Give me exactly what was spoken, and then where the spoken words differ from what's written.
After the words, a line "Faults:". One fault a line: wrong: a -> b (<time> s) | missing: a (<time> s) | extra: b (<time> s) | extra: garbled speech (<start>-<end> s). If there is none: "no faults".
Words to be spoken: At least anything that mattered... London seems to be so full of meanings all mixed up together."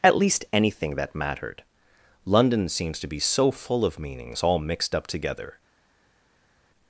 At least anything that mattered... London seems to be so full of meanings all mixed up together."
Faults:
no faults